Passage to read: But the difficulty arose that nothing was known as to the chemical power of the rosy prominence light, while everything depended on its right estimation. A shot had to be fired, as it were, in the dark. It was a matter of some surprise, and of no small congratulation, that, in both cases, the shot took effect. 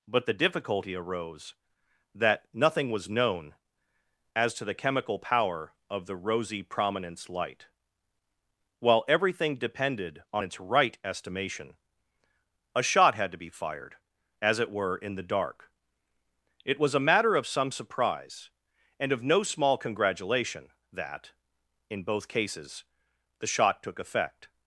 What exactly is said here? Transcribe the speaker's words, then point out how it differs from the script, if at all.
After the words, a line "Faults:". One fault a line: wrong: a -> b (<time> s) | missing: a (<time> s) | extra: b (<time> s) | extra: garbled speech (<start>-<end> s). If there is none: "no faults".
But the difficulty arose that nothing was known as to the chemical power of the rosy prominence light, while everything depended on its right estimation. A shot had to be fired, as it were, in the dark. It was a matter of some surprise, and of no small congratulation, that, in both cases, the shot took effect.
Faults:
no faults